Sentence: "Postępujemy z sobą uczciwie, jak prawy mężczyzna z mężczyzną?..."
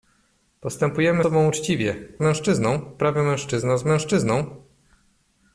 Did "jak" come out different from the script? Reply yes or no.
yes